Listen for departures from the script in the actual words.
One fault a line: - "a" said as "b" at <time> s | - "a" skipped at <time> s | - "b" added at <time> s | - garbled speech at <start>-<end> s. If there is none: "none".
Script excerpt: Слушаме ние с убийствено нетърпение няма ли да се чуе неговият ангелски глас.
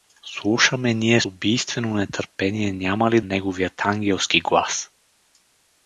- "с" skipped at 1.2 s
- "да се чуе" skipped at 3.2 s